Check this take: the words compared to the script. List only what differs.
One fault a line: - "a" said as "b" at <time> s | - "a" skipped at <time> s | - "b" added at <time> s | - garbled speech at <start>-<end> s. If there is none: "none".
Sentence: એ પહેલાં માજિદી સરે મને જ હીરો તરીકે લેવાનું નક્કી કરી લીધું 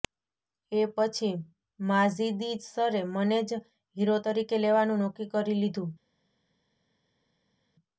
- "પહેલાં" said as "પછી" at 0.9 s